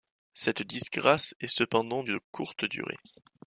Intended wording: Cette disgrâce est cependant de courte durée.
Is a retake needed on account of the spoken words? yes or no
no